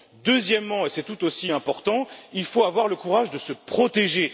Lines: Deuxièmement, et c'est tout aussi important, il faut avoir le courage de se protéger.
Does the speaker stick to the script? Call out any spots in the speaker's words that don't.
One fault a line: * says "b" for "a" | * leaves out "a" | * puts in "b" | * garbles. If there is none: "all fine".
all fine